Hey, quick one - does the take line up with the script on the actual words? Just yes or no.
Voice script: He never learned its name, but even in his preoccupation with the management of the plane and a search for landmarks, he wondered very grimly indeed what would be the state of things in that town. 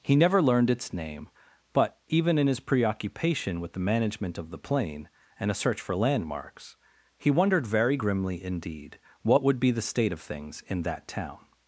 yes